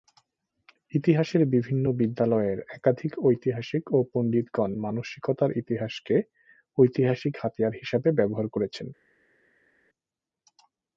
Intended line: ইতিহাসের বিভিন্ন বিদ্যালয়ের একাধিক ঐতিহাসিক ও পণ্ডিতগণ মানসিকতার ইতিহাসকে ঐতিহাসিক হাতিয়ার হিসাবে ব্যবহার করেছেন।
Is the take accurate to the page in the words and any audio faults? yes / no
yes